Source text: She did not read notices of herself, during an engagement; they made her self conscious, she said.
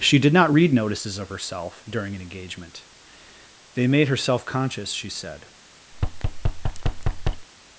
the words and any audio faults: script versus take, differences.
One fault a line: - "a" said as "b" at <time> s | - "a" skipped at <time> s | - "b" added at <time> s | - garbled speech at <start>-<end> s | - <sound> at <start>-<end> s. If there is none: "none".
- thud at 5.9-7.5 s